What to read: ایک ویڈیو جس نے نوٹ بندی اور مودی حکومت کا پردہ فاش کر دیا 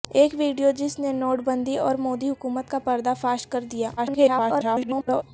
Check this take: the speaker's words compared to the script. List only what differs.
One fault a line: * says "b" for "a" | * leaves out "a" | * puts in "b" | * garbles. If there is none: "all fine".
* garbles